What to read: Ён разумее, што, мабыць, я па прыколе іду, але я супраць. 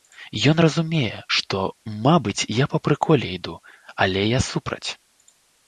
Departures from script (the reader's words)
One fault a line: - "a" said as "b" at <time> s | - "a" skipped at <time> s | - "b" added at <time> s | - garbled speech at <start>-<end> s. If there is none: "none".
none